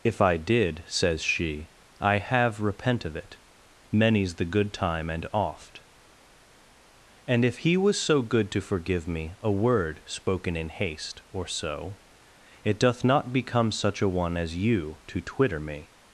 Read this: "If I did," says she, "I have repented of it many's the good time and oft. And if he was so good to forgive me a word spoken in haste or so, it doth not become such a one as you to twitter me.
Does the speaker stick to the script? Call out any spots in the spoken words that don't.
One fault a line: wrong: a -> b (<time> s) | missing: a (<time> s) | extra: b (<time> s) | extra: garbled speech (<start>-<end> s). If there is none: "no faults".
wrong: repented -> repent (2.6 s)